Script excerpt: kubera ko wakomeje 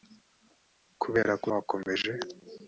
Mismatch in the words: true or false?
false